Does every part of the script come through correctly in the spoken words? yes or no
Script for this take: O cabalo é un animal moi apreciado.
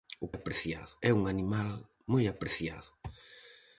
no